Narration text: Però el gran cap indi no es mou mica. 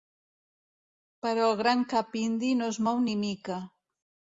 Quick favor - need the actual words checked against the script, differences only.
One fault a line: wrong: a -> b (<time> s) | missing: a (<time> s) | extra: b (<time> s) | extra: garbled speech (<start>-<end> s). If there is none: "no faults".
extra: ni (3.1 s)